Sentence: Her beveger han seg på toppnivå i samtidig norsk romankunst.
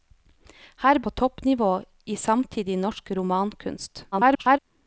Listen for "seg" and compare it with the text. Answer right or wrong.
wrong